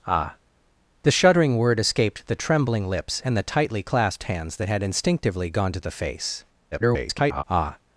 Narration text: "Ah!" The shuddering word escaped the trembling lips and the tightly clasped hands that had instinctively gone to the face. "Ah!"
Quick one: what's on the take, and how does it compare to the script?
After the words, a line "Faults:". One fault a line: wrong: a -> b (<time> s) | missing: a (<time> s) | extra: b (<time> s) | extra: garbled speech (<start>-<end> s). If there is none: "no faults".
"Ah!" The shuddering word escaped the trembling lips and the tightly clasped hands that had instinctively gone to the face. [garbled] "Ah!"
Faults:
extra: garbled speech (6.7-7.4 s)